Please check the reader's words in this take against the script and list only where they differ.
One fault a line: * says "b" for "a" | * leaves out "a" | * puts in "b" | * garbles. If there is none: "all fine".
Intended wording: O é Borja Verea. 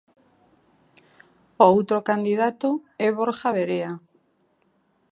* puts in "outro candidato"